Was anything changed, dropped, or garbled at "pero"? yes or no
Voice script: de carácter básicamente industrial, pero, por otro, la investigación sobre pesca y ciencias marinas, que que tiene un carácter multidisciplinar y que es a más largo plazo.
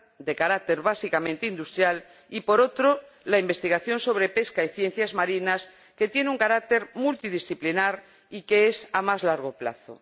yes